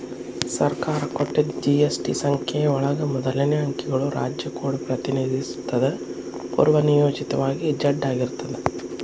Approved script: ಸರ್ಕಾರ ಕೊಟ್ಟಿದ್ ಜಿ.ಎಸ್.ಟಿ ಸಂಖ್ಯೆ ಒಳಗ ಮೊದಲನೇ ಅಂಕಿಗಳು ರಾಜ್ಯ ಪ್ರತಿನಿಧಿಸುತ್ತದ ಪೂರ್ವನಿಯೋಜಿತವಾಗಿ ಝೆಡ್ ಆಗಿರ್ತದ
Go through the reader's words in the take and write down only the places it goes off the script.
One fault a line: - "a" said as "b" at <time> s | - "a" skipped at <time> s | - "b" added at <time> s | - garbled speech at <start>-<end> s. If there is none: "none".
- "ಕೋಡ್" added at 4.6 s